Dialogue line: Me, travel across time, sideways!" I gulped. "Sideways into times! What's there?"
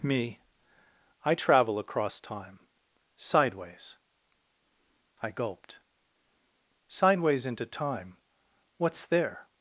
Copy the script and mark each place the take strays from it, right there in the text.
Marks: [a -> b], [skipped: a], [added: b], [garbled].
Me, [added: I] travel across time, sideways!" I gulped. "Sideways into [times! -> time] What's there?"